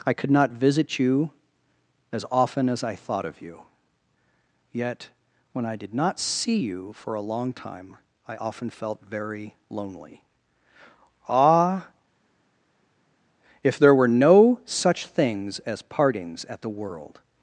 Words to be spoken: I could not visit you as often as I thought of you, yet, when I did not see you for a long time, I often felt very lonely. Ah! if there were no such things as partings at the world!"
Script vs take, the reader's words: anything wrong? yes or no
no